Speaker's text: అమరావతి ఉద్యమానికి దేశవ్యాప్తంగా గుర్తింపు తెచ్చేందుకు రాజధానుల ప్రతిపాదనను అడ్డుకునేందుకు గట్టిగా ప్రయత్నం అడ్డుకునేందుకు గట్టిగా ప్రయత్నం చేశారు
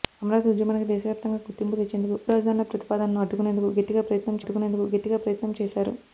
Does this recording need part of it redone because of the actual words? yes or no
no